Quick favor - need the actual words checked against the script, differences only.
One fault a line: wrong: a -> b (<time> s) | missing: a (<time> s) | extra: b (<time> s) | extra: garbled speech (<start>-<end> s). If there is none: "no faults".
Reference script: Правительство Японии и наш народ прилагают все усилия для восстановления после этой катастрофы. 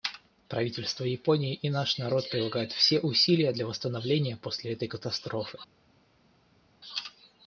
no faults